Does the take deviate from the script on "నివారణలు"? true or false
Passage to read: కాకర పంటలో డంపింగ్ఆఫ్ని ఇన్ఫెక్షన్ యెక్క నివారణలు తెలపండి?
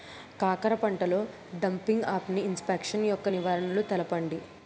false